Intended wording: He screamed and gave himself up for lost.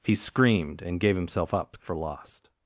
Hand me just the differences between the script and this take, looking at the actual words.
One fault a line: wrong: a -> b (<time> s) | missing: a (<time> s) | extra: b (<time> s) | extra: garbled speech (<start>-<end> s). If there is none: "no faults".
no faults